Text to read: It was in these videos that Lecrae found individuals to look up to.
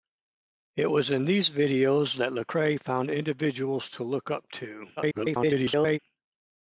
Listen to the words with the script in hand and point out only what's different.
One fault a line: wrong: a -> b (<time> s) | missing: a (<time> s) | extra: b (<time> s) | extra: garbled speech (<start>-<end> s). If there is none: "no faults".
extra: garbled speech (5.0-6.0 s)